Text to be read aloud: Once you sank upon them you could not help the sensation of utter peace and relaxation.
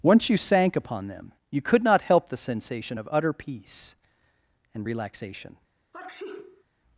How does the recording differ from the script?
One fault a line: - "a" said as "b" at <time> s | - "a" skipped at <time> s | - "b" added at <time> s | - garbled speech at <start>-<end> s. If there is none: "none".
none